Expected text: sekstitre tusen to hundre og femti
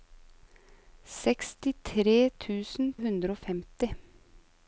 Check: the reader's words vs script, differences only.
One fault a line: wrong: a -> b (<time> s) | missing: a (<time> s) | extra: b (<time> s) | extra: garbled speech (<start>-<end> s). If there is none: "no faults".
missing: to (2.9 s)